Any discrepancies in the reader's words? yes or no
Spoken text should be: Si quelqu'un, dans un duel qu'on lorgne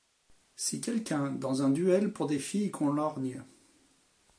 yes